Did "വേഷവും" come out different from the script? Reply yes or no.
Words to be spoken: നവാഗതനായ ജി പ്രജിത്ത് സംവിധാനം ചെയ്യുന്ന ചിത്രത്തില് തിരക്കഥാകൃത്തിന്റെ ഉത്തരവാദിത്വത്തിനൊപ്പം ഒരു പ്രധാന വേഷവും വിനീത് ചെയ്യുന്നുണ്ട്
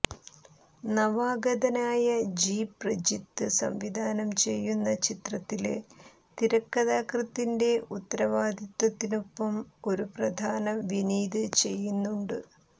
yes